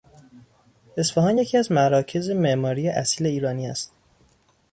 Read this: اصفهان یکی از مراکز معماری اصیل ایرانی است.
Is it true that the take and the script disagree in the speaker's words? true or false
false